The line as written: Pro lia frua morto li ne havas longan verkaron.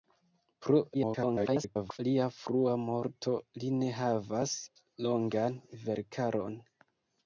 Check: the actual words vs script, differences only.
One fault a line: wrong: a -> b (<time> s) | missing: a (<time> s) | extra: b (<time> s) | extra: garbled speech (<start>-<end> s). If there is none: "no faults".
extra: garbled speech (0.9-2.0 s)